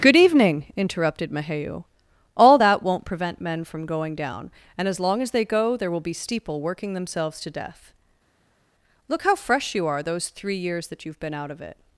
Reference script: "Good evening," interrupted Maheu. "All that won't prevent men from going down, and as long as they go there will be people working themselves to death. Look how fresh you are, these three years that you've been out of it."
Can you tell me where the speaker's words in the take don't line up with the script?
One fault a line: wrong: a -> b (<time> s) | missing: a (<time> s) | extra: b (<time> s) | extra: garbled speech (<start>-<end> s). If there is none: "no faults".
wrong: people -> steeple (6.1 s)
wrong: these -> those (10.0 s)